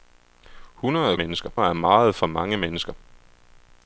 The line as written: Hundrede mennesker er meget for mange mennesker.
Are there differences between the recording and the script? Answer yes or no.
no